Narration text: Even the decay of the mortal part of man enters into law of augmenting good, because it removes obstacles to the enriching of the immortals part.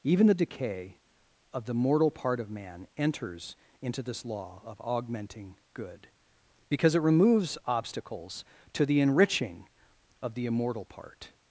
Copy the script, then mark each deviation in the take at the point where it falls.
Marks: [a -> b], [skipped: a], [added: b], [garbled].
Even the decay of the mortal part of man enters into [added: this] law of augmenting good, because it removes obstacles to the enriching of the [immortals -> immortal] part.